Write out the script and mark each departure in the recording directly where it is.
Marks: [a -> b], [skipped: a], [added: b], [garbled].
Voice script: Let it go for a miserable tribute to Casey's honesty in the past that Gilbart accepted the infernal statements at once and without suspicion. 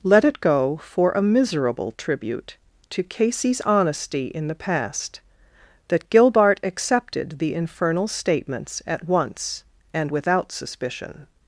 Let it go for a miserable tribute to Casey's honesty in the past that Gilbart accepted the infernal statements at once and without suspicion.